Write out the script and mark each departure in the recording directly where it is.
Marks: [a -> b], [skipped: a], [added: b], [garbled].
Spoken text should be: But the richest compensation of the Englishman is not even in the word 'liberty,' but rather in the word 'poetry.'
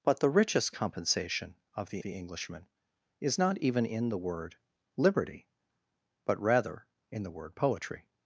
But the richest compensation of the [added: the] Englishman is not even in the word 'liberty,' but rather in the word 'poetry.'